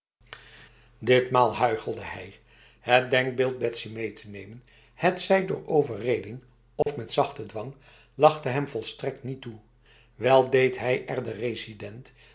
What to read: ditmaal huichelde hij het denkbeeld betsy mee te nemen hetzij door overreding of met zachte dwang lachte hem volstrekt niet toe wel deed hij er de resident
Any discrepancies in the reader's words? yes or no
no